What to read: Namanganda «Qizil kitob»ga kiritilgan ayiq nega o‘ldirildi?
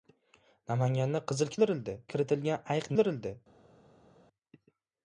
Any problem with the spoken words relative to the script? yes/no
yes